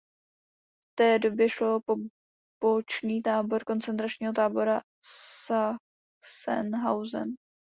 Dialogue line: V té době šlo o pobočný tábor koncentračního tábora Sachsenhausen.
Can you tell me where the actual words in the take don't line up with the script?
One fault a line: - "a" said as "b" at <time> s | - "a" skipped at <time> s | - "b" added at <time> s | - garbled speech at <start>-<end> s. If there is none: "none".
none